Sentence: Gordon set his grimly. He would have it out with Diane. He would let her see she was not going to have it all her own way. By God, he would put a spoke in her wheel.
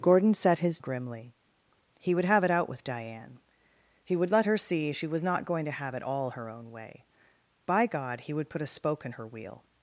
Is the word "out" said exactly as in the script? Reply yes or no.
yes